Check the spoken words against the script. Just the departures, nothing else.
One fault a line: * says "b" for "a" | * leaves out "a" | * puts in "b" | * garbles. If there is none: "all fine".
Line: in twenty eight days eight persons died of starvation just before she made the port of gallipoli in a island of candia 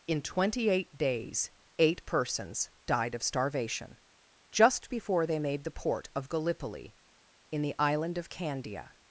* says "they" for "she"
* says "the" for "a"